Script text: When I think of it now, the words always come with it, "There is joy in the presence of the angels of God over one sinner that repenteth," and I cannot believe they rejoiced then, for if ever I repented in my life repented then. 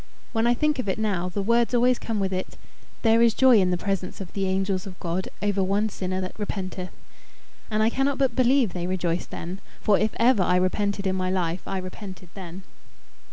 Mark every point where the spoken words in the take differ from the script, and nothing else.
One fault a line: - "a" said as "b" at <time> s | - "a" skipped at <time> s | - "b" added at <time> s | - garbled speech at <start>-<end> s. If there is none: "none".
- "but" added at 8.2 s
- "I" added at 11.6 s